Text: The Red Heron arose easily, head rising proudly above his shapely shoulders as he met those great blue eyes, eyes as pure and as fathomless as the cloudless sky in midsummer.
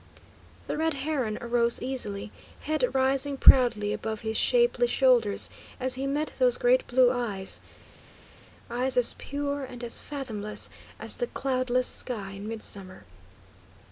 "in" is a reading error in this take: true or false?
false